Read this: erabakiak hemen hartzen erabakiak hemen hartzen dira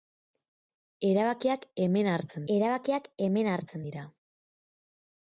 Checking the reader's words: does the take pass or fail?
pass